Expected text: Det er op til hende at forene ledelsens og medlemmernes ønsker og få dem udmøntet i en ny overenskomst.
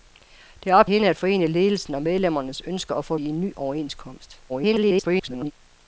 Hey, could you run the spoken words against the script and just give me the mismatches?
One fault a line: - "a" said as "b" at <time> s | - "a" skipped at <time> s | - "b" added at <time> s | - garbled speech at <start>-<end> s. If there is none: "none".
- "til" skipped at 0.9 s
- "dem udmøntet" skipped at 3.2 s
- garbled speech at 4.5-5.5 s